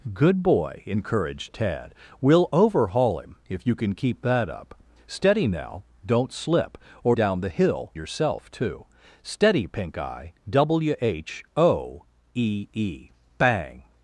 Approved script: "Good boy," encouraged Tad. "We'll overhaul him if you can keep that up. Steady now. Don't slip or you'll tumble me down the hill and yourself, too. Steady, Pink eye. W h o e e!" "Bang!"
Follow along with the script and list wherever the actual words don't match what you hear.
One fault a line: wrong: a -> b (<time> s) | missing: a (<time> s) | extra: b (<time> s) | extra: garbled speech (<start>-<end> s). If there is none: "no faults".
missing: you'll tumble me (7.2 s)
missing: and (7.9 s)